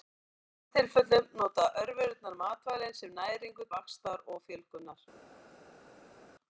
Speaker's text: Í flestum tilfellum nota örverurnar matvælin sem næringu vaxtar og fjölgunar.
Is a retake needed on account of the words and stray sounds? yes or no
no